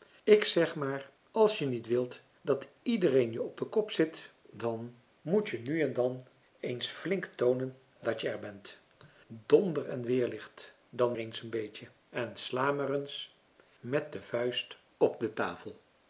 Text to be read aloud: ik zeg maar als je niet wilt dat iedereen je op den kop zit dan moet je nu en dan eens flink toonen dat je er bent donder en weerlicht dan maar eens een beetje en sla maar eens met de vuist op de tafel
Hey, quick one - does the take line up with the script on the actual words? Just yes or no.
no